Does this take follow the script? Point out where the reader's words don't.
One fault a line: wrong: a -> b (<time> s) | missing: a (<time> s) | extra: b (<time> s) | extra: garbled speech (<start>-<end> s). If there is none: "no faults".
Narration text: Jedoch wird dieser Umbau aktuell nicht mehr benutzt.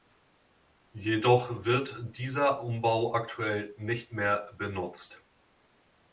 no faults